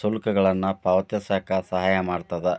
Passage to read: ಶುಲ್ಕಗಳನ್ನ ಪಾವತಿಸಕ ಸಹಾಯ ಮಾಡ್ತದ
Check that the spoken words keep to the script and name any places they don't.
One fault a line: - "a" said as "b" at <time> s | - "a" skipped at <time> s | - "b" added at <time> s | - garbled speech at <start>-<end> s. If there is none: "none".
none